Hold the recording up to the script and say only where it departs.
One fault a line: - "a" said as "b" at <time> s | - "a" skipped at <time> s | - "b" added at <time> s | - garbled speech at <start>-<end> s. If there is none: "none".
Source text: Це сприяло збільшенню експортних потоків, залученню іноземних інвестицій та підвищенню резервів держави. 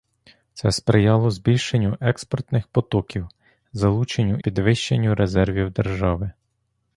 - "іноземних інвестицій та" skipped at 4.4 s